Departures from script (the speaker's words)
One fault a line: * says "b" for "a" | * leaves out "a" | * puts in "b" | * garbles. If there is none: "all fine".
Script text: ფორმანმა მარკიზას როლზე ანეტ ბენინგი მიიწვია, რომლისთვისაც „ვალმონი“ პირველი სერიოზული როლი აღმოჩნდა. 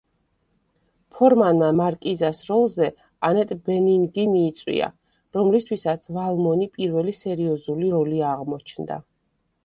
all fine